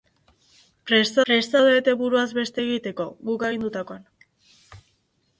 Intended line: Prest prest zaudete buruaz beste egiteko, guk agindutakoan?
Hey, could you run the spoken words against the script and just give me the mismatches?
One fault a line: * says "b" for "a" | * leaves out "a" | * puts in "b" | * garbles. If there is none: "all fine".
all fine